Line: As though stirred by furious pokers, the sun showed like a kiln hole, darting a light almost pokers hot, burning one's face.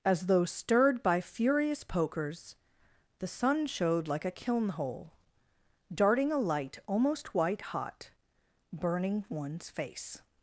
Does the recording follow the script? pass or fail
fail